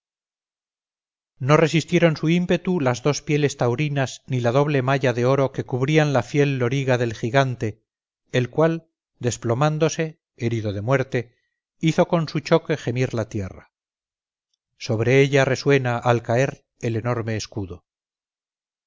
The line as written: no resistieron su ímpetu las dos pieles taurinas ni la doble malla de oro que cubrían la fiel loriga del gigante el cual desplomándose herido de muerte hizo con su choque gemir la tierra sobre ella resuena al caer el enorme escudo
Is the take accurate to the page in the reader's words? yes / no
yes